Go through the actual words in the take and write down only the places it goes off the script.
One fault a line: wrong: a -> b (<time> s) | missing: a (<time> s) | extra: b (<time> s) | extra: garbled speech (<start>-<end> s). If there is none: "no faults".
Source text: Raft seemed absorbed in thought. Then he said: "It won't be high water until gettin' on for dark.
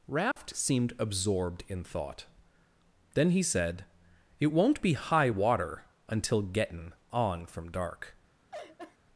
wrong: for -> from (7.5 s)